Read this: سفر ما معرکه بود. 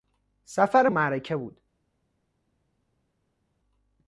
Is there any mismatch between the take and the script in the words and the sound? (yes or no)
yes